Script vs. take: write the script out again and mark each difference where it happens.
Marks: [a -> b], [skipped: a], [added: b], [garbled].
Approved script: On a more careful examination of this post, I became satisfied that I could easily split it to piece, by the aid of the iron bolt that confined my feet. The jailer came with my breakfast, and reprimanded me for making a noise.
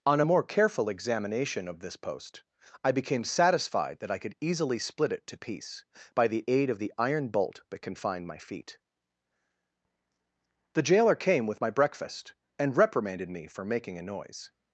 On a more careful examination of this post, I became satisfied that I could easily split it to piece, by the aid of the iron bolt that confined my feet. The jailer came with my breakfast, and reprimanded me for making a noise.